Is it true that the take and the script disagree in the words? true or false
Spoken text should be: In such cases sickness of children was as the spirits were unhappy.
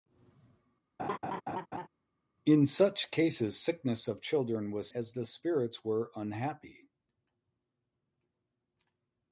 false